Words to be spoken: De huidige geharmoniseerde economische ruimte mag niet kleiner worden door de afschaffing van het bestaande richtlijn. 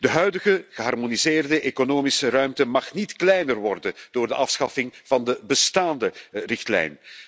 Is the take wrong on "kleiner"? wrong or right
right